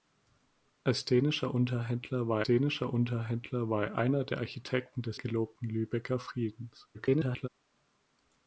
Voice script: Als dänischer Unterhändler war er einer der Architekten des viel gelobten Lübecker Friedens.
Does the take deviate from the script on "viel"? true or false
true